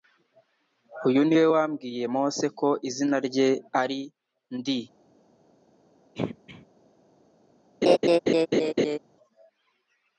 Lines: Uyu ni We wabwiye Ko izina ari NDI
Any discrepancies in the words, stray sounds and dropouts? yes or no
yes